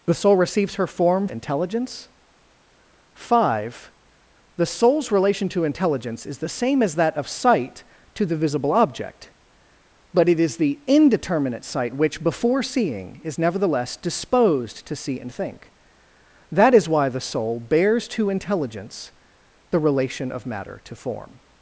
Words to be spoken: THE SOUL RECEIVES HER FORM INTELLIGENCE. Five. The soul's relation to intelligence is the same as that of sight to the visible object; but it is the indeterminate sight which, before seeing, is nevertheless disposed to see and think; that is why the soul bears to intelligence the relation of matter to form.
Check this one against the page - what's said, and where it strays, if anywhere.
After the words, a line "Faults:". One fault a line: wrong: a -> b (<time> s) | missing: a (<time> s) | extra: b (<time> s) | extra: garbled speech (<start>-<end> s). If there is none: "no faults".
THE SOUL RECEIVES HER FORM INTELLIGENCE. Five. The soul's relation to intelligence is the same as that of sight to the visible object; but it is the indeterminate sight which, before seeing, is nevertheless disposed to see and think; that is why the soul bears to intelligence the relation of matter to form.
Faults:
no faults